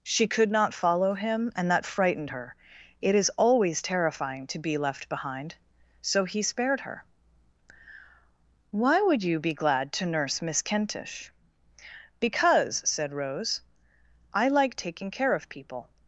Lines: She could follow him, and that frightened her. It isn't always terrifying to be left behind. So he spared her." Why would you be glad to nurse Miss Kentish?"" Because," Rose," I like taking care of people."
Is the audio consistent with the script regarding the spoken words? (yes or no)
no